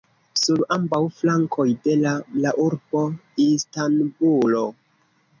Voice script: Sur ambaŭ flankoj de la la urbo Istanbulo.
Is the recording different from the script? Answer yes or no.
no